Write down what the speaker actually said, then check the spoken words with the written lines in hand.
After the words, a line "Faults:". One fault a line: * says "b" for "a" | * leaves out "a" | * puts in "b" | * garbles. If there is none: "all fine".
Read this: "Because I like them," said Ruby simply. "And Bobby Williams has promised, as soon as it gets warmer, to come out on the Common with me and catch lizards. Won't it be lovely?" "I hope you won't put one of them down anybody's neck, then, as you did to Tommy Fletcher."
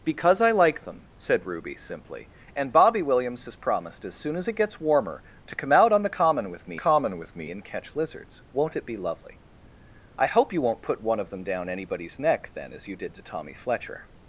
"Because I like them," said Ruby simply. "And Bobby Williams has promised, as soon as it gets warmer, to come out on the Common with me Common with me and catch lizards. Won't it be lovely?" "I hope you won't put one of them down anybody's neck, then, as you did to Tommy Fletcher."
Faults:
* puts in "Common with me"